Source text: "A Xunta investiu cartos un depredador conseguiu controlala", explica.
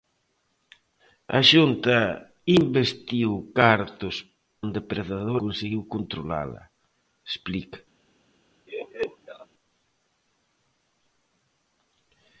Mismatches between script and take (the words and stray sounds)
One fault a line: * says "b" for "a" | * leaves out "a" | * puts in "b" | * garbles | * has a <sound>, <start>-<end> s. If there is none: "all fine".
* has a laugh, 8.7-9.5 s